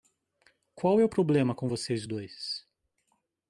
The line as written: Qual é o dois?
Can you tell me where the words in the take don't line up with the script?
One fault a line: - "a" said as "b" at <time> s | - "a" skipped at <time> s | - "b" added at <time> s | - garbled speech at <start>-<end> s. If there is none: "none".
- "problema com vocês" added at 1.1 s